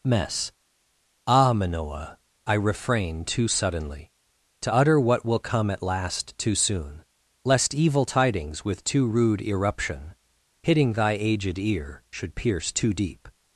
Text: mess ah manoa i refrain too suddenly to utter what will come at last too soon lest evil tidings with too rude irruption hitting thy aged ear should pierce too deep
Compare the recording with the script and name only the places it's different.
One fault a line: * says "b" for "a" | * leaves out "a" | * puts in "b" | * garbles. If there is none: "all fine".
all fine